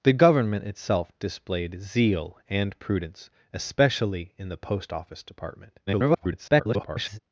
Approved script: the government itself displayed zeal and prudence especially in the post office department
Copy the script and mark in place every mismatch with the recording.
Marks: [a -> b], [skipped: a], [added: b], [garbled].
the government itself displayed zeal and prudence especially in the post office department [garbled]